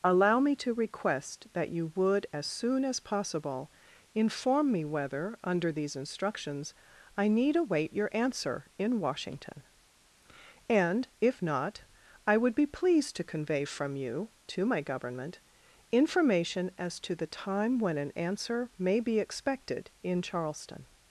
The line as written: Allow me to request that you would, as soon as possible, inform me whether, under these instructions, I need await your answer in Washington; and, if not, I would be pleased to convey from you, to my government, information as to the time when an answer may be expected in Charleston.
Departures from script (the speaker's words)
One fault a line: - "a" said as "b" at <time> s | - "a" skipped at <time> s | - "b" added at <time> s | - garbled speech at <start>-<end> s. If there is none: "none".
none